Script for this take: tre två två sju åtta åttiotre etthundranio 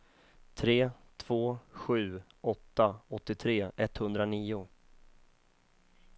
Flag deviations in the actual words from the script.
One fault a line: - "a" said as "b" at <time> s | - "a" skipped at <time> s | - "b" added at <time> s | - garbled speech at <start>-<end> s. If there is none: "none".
- "två" skipped at 1.6 s